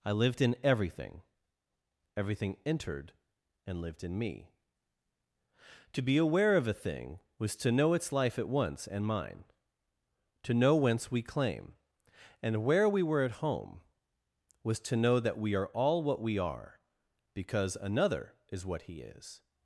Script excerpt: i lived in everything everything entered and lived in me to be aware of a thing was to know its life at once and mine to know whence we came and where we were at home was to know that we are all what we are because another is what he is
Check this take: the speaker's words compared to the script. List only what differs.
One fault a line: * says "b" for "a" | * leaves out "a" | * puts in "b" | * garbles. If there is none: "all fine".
* says "claim" for "came"